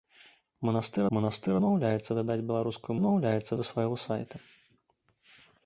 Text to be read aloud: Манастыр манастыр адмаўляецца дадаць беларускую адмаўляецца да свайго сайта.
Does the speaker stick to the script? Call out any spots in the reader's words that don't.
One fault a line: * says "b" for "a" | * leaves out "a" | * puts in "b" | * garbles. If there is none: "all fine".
all fine